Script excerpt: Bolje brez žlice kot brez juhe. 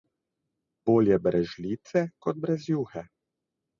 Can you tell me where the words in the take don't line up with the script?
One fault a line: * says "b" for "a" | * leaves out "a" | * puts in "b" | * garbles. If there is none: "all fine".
all fine